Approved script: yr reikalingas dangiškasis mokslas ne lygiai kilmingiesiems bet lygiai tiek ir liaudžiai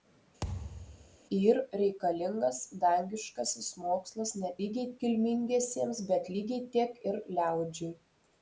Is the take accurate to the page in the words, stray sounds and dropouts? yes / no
no